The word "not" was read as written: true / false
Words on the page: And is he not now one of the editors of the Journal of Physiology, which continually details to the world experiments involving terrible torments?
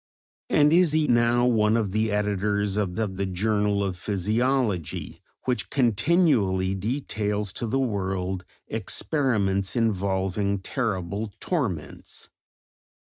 false